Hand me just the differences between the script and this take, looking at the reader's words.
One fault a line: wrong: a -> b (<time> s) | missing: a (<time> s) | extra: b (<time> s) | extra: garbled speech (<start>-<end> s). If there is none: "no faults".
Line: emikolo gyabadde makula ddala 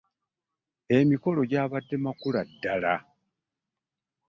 no faults